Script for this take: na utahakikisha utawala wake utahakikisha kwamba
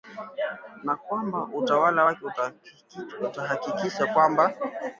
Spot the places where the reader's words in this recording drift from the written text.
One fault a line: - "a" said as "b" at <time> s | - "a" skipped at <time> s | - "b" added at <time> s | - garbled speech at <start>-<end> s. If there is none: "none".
- "utahakikisha" said as "kwamba" at 0.9 s